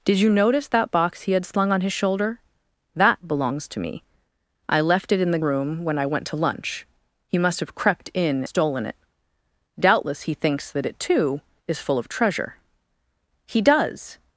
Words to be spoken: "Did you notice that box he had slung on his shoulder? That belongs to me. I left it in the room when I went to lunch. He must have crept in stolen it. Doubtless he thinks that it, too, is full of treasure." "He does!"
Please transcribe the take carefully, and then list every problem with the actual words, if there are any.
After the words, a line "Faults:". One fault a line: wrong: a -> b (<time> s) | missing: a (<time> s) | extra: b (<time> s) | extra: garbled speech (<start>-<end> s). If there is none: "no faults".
"Did you notice that box he had slung on his shoulder? That belongs to me. I left it in the room when I went to lunch. He must have crept in stolen it. Doubtless he thinks that it, too, is full of treasure." "He does!"
Faults:
no faults